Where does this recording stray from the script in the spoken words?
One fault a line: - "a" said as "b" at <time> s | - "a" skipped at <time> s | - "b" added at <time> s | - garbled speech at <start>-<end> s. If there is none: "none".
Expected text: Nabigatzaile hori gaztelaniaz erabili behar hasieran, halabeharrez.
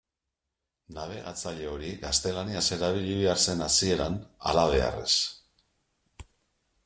- "zen" added at 3.5 s